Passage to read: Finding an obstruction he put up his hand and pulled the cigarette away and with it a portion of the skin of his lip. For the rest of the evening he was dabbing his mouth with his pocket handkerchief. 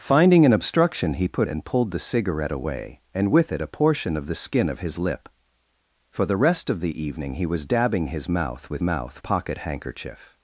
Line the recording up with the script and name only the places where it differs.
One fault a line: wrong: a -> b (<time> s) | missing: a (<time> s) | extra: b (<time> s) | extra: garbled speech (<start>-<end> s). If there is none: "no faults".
missing: up his hand (1.5 s)
wrong: his -> mouth (8.8 s)